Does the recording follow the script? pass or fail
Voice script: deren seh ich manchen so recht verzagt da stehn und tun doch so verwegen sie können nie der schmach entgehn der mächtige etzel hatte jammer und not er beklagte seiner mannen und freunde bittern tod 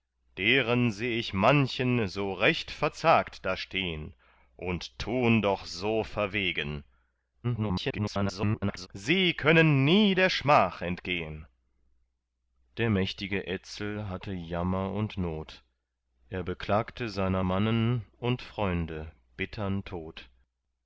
fail